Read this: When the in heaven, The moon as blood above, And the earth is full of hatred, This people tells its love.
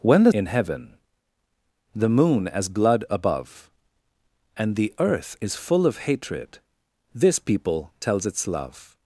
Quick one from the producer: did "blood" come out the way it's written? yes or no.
yes